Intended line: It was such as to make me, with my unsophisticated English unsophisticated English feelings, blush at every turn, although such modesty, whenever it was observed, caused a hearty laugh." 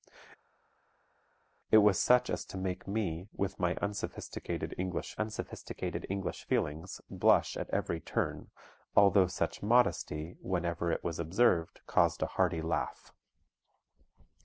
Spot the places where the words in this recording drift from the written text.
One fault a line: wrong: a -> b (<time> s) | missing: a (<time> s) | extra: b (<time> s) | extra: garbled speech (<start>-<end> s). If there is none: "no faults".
no faults